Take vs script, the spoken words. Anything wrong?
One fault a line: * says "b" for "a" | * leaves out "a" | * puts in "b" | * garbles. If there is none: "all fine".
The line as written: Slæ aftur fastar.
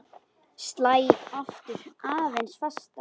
* puts in "aðeins"